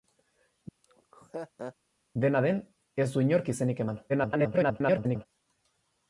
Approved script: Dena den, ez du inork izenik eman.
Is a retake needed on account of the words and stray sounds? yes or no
yes